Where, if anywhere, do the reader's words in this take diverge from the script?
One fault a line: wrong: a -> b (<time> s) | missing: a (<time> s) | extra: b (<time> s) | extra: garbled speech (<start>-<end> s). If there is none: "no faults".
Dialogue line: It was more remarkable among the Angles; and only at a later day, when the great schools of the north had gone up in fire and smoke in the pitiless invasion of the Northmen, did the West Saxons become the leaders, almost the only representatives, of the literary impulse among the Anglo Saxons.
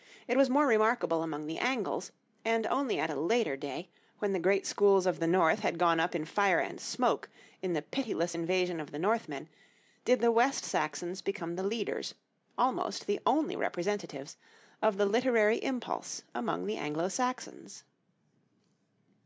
no faults